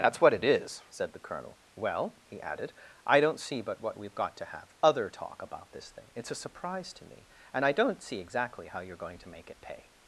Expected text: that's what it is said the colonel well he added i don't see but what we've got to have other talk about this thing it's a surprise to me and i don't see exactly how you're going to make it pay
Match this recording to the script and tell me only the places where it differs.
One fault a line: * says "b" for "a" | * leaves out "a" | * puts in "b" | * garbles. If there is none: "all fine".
all fine